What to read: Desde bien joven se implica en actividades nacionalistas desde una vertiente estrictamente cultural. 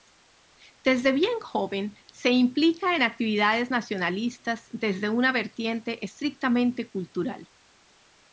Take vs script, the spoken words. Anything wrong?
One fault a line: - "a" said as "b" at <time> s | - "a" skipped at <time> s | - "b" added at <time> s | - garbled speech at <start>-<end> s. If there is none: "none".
none